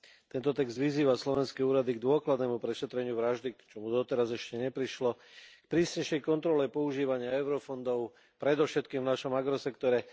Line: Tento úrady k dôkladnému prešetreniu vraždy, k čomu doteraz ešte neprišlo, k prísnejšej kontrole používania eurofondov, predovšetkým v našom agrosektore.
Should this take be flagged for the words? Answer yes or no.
yes